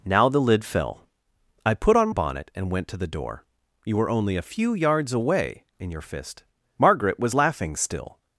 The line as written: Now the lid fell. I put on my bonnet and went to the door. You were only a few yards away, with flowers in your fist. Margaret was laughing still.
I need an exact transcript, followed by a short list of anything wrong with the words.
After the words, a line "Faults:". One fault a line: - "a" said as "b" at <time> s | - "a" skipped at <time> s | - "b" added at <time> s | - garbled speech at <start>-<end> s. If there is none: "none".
Now the lid fell. I put on bonnet and went to the door. You were only a few yards away, in your fist. Margaret was laughing still.
Faults:
- "my" skipped at 2.1 s
- "with flowers" skipped at 5.6 s